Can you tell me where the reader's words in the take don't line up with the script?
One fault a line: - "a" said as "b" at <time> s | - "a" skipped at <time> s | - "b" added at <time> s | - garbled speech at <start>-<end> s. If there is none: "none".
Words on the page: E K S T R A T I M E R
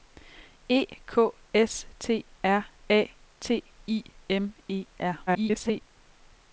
- garbled speech at 5.3-5.8 s